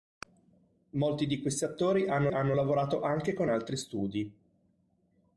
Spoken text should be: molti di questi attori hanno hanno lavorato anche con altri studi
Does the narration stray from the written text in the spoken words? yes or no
no